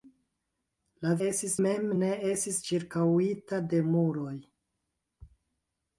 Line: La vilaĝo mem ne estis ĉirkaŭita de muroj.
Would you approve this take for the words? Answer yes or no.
no